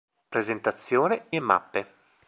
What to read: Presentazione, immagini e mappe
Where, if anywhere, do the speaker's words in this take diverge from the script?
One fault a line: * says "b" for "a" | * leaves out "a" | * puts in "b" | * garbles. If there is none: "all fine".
* leaves out "immagini"